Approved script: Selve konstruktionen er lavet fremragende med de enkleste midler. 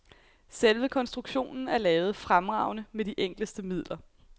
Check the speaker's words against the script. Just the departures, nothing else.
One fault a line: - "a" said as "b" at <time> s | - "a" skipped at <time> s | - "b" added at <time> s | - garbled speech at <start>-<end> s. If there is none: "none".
none